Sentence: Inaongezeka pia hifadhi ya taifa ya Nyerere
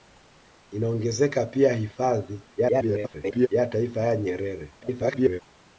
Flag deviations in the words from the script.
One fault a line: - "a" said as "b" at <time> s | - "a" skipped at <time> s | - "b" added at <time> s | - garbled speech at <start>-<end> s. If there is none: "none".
- garbled speech at 2.6-3.5 s
- garbled speech at 4.8-5.4 s